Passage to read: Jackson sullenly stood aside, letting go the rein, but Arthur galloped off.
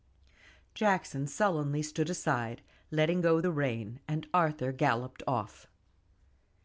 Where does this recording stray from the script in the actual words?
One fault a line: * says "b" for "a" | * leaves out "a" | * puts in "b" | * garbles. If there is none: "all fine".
* says "and" for "but"